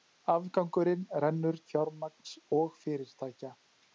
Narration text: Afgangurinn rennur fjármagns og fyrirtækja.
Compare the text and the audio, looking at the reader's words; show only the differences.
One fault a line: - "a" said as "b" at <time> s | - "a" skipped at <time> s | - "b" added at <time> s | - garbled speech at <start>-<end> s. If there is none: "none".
none